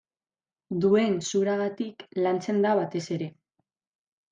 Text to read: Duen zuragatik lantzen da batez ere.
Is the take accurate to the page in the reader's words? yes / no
yes